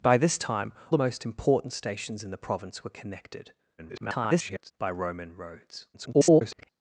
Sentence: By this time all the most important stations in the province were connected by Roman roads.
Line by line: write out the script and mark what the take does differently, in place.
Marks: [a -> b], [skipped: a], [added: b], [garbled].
By this time [skipped: all] the most important stations in the province were connected [garbled] by Roman roads. [garbled]